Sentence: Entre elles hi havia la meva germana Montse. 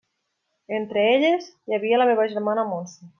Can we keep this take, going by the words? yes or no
yes